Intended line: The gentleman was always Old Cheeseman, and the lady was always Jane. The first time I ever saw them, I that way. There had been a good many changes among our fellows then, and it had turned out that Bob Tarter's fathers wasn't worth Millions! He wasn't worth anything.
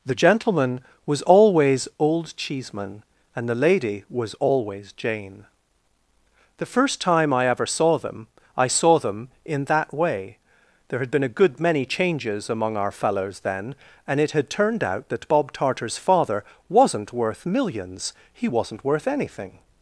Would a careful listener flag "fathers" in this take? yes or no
yes